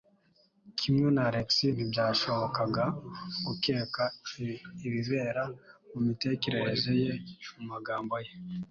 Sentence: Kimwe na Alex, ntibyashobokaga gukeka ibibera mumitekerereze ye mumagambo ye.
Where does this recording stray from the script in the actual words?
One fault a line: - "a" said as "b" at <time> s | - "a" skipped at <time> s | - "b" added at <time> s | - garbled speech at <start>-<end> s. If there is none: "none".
none